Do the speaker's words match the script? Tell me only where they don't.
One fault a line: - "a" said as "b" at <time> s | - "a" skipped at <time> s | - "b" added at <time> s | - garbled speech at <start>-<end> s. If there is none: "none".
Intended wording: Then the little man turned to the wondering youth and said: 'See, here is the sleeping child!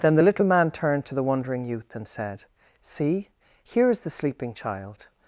none